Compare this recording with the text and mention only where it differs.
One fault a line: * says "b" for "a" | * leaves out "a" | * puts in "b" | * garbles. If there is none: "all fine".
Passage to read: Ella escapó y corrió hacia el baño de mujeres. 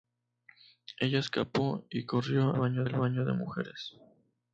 * says "baño" for "hacia"